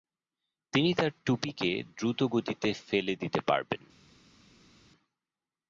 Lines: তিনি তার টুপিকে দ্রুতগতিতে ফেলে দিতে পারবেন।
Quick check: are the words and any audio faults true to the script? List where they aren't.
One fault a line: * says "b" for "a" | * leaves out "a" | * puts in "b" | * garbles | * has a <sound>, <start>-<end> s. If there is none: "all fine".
all fine